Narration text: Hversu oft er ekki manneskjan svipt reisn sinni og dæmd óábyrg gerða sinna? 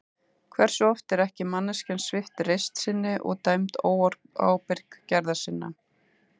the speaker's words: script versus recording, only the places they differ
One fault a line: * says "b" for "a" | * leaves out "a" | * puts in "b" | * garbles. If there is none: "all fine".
all fine